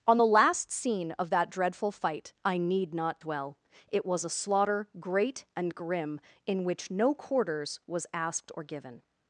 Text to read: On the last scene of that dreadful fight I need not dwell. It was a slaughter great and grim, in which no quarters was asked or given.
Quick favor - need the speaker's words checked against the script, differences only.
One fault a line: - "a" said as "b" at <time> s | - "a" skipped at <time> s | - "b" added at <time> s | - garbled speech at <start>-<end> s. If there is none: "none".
none